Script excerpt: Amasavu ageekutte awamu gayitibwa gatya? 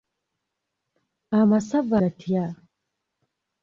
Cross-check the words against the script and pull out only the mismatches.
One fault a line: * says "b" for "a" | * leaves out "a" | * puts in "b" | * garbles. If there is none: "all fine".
* leaves out "ageekutte awamu gayitibwa"